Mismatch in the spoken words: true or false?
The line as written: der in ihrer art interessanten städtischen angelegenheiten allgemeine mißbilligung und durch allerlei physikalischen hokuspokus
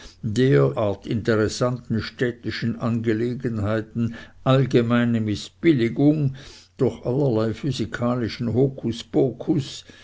true